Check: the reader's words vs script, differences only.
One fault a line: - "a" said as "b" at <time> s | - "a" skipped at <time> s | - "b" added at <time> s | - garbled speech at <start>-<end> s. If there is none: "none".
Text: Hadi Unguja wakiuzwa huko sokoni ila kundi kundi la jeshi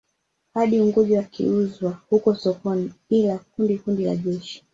none